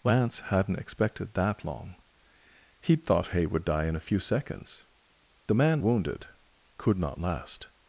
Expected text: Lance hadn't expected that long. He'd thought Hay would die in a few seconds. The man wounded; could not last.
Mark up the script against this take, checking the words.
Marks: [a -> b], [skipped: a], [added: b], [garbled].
Lance hadn't expected that long. He'd thought Hay would die in a few seconds. The man wounded; could not last.